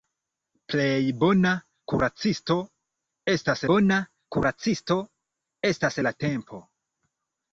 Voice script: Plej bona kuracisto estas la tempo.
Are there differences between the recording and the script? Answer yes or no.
yes